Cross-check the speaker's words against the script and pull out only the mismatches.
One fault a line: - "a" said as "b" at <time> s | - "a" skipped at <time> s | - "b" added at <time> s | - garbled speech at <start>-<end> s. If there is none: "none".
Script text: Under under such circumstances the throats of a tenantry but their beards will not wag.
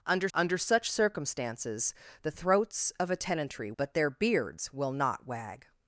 none